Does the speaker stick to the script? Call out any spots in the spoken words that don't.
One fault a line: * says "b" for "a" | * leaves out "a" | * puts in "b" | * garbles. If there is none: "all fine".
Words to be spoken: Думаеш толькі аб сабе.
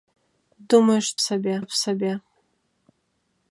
* says "сабе" for "толькі"